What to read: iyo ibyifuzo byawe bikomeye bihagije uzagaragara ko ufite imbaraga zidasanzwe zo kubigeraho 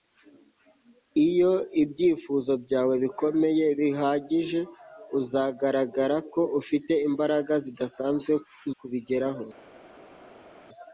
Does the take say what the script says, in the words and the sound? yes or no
no